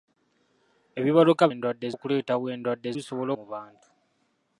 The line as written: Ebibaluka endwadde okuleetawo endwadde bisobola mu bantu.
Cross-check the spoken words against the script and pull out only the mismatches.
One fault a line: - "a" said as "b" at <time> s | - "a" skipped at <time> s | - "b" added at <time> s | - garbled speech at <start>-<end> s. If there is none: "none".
none